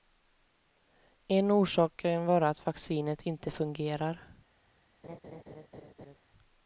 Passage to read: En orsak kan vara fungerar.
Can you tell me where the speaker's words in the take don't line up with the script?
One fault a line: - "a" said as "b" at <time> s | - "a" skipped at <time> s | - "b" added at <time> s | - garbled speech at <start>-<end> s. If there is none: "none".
- "att vaccinet inte" added at 2.5 s